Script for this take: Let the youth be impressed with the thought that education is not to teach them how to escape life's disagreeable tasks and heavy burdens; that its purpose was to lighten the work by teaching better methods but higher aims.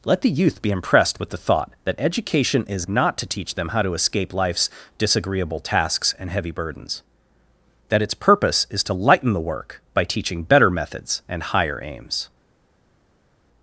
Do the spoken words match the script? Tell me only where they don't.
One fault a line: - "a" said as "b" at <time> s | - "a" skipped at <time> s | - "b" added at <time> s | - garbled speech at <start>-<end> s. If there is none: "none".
- "was" said as "is" at 8.7 s
- "but" said as "and" at 11.3 s